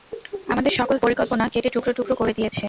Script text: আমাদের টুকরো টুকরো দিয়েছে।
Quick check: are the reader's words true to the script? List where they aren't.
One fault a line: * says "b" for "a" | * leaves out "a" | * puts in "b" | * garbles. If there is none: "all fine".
* puts in "সকল পরিকল্পনা কেটে"
* puts in "করে"